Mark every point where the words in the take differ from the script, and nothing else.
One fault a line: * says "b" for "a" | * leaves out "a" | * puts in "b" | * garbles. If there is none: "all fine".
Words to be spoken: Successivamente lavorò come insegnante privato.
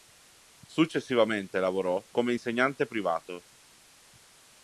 all fine